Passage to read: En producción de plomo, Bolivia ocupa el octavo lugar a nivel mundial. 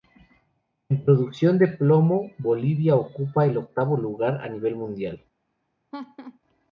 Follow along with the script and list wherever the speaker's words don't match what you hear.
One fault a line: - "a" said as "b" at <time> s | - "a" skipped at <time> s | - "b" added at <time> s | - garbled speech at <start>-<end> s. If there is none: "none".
none